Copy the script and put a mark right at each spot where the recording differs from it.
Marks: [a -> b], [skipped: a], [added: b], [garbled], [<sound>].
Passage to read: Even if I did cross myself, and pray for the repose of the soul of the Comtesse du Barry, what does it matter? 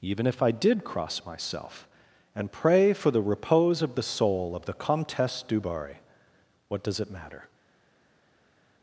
Even if I did cross myself, and pray for the repose of the soul of the Comtesse du Barry, what does it matter?